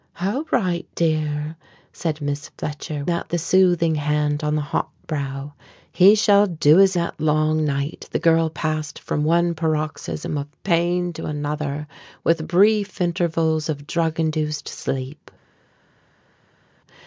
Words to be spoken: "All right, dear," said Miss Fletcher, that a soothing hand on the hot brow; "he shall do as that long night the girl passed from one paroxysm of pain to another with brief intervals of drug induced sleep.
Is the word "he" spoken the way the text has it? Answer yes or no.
yes